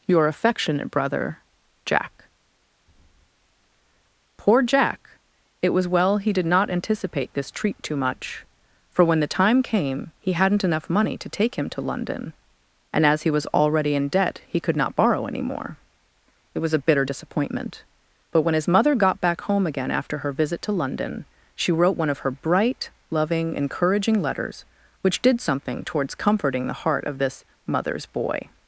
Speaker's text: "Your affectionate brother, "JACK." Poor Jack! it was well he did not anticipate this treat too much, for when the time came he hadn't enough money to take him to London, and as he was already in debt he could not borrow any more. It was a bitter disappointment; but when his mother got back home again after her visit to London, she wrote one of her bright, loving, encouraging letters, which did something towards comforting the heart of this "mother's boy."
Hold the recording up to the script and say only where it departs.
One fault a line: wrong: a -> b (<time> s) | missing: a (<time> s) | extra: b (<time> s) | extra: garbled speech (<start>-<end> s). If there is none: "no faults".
no faults